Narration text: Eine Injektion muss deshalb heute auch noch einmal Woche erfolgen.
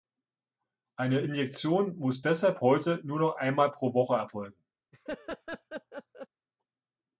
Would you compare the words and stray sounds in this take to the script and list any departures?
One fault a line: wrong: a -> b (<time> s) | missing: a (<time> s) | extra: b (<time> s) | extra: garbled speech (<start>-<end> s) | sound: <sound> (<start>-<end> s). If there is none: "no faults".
wrong: auch -> nur (3.0 s)
extra: pro (3.7 s)
sound: laugh (4.9-6.3 s)